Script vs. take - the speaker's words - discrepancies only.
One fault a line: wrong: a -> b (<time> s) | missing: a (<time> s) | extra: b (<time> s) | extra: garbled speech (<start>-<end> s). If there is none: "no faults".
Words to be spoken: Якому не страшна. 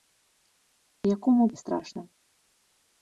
no faults